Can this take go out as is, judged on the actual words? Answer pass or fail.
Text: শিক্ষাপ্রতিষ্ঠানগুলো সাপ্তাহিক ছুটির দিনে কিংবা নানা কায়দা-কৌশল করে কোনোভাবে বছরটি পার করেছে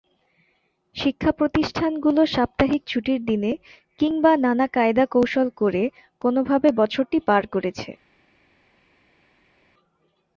pass